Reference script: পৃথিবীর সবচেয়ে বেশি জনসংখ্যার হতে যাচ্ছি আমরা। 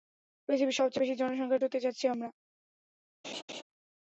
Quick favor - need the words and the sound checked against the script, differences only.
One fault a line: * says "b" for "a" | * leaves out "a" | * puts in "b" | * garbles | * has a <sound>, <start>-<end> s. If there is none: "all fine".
* has a laugh, 3.2-3.6 s